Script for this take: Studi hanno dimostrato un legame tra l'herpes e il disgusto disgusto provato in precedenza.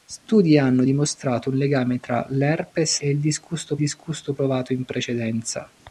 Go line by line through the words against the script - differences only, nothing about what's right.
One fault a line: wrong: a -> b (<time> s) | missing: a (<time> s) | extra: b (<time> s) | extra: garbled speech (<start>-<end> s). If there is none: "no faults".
no faults